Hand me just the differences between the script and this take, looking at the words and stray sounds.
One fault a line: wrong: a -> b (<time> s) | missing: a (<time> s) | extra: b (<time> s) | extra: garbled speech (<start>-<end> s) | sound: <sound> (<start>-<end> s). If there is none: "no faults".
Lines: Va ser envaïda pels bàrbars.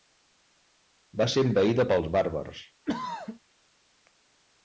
sound: throat clearing (2.9-3.4 s)